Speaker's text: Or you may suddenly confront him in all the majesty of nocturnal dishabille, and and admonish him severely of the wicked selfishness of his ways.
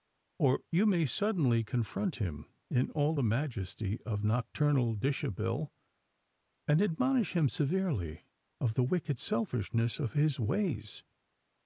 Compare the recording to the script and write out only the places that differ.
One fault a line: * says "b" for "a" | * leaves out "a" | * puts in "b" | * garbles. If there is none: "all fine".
* leaves out "and"